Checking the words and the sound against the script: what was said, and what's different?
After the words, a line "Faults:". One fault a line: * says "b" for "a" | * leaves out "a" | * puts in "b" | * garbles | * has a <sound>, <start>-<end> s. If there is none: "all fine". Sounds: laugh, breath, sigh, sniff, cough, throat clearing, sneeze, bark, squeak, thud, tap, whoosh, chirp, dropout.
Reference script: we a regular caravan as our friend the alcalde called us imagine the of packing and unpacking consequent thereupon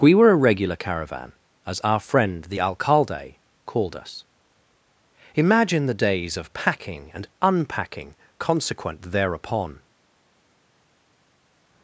we were a regular caravan as our friend the alcalde called us imagine the days of packing and unpacking consequent thereupon
Faults:
* puts in "were"
* puts in "days"